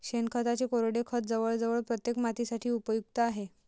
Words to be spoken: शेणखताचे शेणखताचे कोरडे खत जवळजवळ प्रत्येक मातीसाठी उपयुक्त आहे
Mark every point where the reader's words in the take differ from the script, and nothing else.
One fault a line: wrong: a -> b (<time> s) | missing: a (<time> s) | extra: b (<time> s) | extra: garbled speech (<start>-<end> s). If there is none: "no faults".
missing: शेणखताचे (0.7 s)